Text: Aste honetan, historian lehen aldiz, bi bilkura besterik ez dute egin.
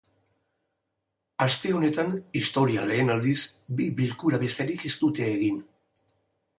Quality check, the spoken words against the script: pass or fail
pass